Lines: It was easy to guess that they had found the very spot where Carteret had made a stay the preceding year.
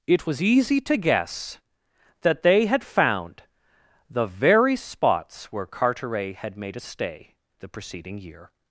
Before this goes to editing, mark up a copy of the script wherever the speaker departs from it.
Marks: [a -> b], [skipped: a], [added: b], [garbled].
It was easy to guess that they had found the very [spot -> spots] where Carteret had made a stay the preceding year.